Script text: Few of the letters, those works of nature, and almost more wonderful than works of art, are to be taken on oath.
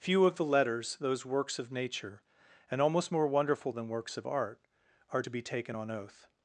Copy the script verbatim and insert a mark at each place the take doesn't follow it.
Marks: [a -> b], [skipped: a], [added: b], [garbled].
Few of the letters, those works of nature, and almost more wonderful than works of art, are to be taken on oath.